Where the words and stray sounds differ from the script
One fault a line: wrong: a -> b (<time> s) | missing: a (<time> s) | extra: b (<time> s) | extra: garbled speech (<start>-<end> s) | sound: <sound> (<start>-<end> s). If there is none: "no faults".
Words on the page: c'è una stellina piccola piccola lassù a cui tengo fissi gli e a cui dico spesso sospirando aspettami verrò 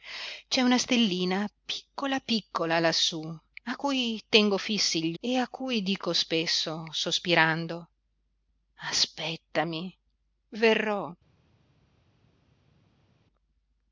no faults